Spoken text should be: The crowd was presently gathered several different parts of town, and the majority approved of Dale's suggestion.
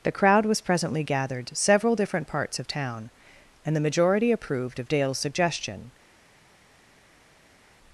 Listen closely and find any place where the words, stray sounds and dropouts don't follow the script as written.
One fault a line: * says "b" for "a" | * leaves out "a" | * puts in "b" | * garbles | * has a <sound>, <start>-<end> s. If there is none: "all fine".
all fine